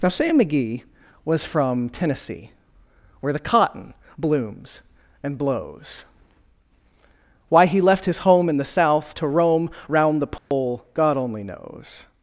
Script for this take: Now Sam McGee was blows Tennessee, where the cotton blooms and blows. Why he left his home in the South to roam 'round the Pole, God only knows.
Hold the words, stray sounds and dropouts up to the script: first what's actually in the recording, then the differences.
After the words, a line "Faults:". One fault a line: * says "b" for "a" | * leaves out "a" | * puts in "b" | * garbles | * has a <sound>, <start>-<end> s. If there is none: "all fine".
Now Sam McGee was from Tennessee, where the cotton blooms and blows. Why he left his home in the South to roam 'round the Pole, God only knows.
Faults:
* says "from" for "blows"
* has a dropout, 10.4-10.5 s